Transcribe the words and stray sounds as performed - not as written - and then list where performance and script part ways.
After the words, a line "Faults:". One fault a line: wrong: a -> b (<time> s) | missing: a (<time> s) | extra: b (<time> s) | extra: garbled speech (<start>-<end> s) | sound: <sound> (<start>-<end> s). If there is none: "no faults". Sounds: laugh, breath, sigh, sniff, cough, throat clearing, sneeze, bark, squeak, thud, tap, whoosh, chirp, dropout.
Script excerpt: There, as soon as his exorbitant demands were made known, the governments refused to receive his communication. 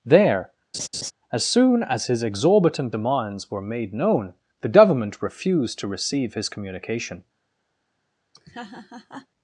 There, as soon as his exorbitant demands were made known, the government refused to receive his communication.
Faults:
sound: laugh (0.7-1.1 s)
wrong: governments -> government (4.7 s)
sound: laugh (8.3-9.3 s)